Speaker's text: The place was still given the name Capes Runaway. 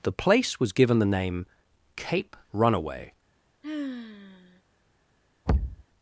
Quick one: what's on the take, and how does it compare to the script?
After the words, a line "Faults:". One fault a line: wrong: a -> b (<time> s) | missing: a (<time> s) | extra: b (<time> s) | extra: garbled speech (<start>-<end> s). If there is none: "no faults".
The place was given the name Cape Runaway.
Faults:
missing: still (0.7 s)
wrong: Capes -> Cape (1.9 s)